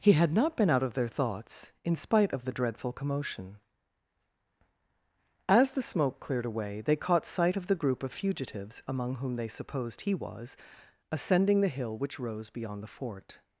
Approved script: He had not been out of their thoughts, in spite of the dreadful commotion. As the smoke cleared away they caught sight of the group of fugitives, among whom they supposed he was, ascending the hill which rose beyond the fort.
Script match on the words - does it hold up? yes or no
yes